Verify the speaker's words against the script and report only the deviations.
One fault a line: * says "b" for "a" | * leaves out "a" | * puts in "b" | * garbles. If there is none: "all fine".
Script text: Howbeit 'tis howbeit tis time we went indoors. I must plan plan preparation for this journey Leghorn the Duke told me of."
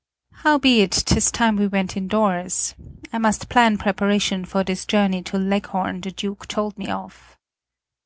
* leaves out "howbeit tis"
* leaves out "plan"
* puts in "to"